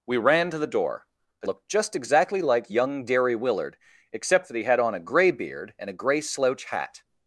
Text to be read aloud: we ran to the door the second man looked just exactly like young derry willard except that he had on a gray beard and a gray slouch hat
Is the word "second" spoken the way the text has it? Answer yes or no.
no